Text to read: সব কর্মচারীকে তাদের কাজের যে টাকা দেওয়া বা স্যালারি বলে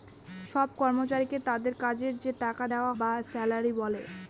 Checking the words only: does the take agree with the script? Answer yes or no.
yes